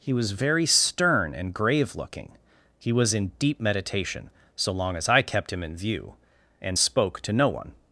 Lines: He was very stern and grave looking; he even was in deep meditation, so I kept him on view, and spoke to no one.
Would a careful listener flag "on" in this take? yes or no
yes